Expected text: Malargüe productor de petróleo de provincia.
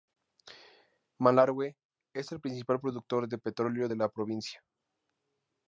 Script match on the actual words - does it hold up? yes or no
no